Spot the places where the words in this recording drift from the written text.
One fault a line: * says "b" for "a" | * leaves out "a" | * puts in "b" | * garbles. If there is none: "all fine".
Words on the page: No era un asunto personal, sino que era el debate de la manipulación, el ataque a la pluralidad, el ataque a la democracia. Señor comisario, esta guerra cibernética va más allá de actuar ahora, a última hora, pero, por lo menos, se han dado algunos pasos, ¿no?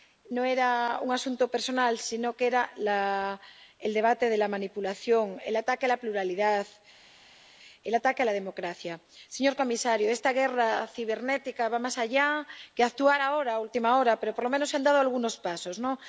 all fine